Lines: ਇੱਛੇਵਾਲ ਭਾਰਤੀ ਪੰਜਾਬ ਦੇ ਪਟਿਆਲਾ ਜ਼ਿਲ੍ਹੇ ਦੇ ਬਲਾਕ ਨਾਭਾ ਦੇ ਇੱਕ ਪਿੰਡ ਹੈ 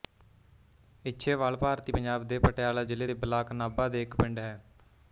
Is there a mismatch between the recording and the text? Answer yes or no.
no